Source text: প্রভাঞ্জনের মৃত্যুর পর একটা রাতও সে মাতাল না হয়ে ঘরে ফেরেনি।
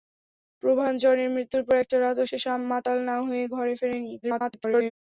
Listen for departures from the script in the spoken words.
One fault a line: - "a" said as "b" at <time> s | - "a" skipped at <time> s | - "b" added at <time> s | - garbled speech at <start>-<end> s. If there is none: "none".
- garbled speech at 4.2-4.9 s